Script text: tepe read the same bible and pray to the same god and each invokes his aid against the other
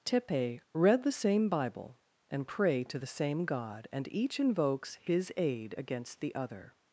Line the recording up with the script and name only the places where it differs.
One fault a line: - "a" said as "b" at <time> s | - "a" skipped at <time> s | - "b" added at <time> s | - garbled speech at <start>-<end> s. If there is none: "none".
none